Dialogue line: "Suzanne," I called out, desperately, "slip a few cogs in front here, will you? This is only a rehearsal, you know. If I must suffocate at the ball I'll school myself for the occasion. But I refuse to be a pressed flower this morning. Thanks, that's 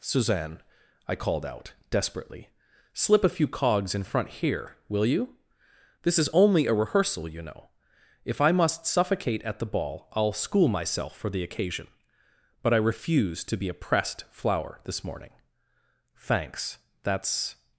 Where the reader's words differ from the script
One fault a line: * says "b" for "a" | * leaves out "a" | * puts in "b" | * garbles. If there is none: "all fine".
all fine